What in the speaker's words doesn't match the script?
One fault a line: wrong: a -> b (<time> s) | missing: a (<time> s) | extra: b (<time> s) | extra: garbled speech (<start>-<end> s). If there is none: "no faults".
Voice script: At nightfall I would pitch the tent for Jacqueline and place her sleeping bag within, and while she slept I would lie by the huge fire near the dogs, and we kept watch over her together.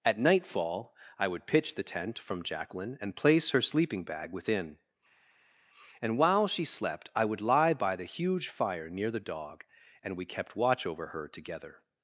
wrong: for -> from (2.2 s)
wrong: dogs -> dog (9.2 s)